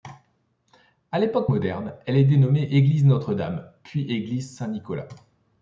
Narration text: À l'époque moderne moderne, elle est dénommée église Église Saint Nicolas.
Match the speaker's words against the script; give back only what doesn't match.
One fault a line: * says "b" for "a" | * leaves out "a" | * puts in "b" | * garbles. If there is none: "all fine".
* leaves out "moderne"
* puts in "Notre Dame puis"